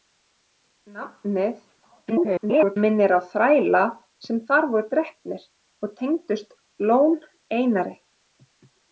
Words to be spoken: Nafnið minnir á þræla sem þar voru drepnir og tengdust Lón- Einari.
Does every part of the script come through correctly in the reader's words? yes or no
no